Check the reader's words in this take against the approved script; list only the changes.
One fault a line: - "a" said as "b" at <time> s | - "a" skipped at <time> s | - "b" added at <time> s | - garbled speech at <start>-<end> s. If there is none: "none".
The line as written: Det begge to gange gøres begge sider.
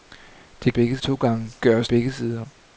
none